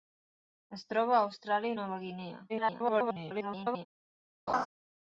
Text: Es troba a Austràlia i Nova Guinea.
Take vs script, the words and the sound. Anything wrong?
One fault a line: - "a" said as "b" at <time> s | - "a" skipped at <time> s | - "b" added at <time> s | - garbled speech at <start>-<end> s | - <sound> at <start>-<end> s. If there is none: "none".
- garbled speech at 2.5-3.9 s
- laugh at 4.5-4.7 s